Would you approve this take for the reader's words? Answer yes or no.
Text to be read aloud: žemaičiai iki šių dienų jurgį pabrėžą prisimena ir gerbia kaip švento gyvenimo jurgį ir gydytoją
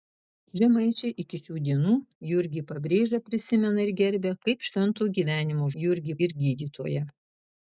yes